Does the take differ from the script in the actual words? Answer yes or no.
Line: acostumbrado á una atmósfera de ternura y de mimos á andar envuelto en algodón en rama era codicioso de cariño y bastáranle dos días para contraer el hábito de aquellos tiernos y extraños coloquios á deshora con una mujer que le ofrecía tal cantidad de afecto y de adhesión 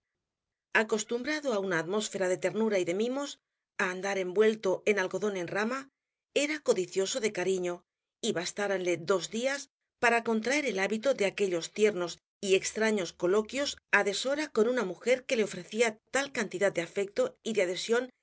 no